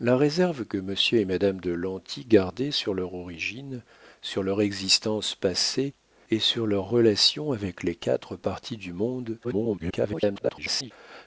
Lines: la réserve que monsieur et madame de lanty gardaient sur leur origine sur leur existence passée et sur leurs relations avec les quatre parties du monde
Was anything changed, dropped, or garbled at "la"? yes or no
no